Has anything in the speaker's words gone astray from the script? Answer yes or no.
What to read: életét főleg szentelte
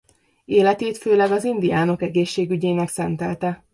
yes